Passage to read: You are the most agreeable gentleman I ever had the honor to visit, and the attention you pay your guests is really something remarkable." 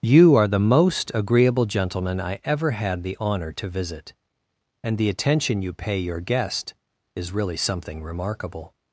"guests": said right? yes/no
no